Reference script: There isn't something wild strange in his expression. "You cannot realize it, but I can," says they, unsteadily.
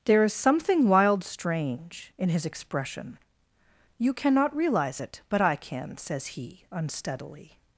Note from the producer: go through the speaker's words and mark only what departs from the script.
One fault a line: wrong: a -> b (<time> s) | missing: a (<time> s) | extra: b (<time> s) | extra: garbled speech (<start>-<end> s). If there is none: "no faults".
wrong: isn't -> is (0.2 s)
wrong: they -> he (6.3 s)